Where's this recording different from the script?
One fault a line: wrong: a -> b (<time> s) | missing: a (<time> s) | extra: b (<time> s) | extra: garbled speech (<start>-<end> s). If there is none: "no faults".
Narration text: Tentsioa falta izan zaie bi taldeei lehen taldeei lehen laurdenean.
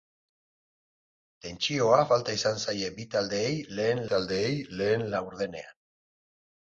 no faults